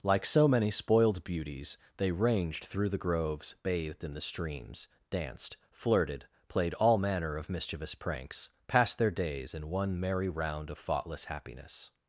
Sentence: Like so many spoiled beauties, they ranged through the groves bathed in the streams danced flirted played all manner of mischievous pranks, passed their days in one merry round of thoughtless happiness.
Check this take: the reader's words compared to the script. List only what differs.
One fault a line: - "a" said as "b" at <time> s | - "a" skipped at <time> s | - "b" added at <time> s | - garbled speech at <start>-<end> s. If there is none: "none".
none